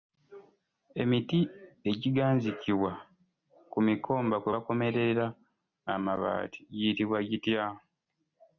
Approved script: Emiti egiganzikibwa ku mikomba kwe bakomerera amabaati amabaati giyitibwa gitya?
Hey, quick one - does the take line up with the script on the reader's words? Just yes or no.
no